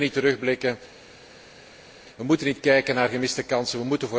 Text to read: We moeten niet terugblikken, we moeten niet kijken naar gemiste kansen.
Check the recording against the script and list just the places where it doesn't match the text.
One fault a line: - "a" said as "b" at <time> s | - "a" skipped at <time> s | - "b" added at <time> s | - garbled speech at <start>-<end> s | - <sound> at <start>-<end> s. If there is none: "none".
none